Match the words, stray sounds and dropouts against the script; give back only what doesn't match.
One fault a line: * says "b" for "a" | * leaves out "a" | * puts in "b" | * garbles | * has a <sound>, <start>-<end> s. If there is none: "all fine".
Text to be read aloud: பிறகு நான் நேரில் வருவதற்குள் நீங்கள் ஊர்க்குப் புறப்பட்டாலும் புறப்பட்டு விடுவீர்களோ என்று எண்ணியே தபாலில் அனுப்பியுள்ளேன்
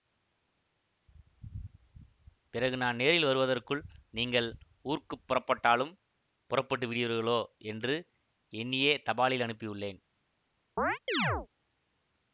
* has a chirp, 10.8-11.5 s